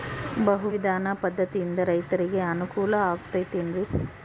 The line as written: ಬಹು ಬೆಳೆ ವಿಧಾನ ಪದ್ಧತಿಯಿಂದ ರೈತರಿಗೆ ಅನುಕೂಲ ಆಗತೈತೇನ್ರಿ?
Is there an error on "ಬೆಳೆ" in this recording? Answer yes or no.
yes